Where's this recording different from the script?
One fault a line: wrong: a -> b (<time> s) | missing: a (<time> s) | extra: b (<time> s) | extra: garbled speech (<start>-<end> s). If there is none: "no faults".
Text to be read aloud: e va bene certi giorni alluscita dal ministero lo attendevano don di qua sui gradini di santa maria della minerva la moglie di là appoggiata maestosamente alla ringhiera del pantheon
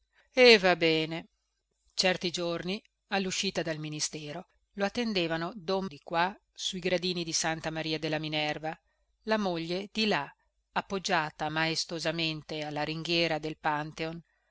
no faults